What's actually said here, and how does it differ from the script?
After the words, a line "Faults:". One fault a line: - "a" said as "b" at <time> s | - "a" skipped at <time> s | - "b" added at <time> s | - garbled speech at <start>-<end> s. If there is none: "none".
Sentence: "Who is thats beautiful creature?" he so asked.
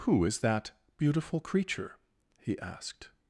"Who is that beautiful creature?" he asked.
Faults:
- "thats" said as "that" at 0.4 s
- "so" skipped at 2.6 s